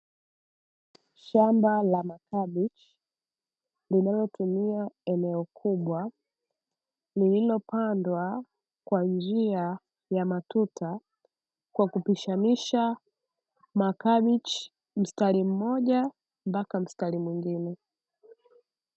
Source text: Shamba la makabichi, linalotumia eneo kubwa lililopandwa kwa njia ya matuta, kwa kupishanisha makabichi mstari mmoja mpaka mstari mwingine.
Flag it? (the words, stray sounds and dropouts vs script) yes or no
no